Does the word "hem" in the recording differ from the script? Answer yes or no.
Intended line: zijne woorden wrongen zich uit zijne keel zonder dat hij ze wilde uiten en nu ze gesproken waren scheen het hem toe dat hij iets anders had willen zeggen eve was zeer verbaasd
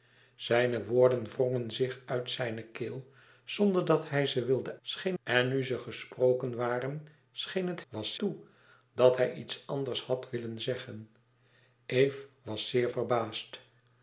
yes